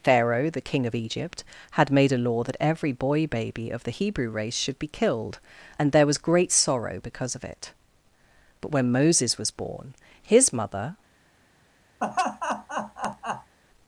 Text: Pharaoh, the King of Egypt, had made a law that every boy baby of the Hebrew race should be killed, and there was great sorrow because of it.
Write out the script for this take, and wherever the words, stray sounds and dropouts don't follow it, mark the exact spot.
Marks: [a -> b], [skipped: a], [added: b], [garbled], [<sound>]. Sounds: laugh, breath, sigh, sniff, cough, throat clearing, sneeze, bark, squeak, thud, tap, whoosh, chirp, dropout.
Pharaoh, the King of Egypt, had made a law that every boy baby of the Hebrew race should be killed, and there was great sorrow because of it. [added: But when Moses was born his mother] [laugh]